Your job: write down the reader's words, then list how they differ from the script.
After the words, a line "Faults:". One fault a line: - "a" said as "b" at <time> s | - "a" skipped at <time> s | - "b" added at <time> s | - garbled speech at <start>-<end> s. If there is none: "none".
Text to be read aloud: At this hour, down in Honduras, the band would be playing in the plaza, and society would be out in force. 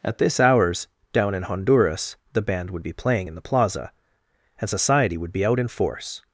At this hours, down in Honduras, the band would be playing in the plaza, and society would be out in force.
Faults:
- "hour" said as "hours" at 0.4 s